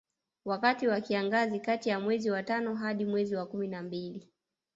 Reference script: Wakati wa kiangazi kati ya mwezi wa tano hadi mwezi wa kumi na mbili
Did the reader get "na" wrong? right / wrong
right